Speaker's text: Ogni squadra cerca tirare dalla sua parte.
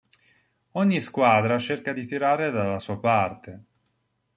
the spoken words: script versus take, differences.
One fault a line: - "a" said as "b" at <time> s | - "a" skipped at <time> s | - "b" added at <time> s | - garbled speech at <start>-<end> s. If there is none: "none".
- "di" added at 1.9 s